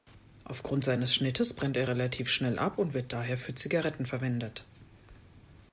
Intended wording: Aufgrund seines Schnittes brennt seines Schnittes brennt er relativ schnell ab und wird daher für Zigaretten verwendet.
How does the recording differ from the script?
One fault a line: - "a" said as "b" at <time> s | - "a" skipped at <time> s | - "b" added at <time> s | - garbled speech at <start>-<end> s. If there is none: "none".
- "seines Schnittes brennt" skipped at 1.8 s